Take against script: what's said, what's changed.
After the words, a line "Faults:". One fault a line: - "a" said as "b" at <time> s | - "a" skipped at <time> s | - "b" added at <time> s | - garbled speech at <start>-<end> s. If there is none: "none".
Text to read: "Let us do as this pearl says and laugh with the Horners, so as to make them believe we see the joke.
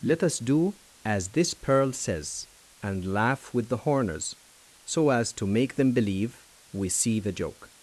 "Let us do as this pearl says and laugh with the Horners, so as to make them believe we see the joke.
Faults:
none